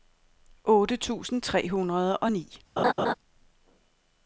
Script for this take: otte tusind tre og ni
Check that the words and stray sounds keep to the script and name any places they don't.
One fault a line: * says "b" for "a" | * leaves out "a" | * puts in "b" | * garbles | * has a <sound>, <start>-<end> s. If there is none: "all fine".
* puts in "hundrede"
* has a laugh, 2.8-3.1 s